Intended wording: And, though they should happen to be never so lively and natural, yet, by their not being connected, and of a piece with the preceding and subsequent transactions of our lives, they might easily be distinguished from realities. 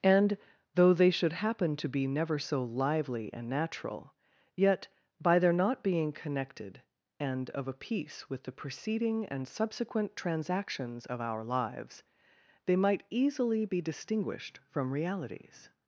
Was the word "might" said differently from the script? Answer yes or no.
no